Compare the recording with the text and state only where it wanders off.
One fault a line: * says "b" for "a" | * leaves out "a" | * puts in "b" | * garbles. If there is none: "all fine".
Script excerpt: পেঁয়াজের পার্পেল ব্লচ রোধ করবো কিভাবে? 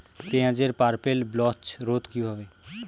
* leaves out "করবো"